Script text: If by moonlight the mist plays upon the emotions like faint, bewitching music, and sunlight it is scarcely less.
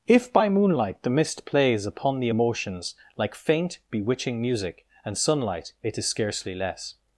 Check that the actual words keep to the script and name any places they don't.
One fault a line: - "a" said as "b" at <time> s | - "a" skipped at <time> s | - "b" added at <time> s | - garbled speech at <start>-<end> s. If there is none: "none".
none